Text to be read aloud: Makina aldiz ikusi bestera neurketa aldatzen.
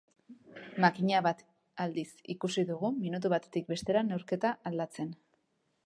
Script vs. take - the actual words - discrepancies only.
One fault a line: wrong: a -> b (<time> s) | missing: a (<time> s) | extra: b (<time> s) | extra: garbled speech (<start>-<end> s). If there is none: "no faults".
extra: bat (1.3 s)
extra: dugu minutu batetik (2.7 s)